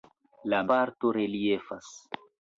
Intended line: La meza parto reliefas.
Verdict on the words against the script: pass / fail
fail